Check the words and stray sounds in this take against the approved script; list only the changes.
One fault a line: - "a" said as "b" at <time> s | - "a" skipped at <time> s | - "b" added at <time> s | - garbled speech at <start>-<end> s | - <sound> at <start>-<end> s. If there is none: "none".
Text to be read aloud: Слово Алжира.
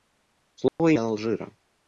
- dropout at 0.7-0.8 s